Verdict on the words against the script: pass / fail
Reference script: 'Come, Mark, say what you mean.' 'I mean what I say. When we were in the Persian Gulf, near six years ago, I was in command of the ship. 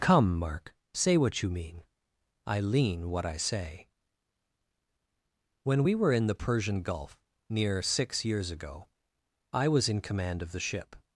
fail